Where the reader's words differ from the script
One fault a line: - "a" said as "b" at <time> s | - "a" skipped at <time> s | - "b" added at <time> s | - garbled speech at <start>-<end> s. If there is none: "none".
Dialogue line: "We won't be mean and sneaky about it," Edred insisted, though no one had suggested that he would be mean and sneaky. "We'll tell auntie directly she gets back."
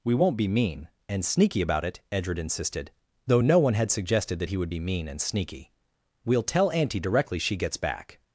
none